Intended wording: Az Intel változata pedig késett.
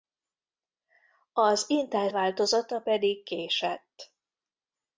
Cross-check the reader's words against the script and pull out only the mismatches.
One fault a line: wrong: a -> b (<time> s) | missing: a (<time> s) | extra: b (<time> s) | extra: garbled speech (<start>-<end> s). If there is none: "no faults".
no faults